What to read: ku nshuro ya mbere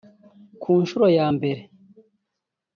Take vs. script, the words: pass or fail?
pass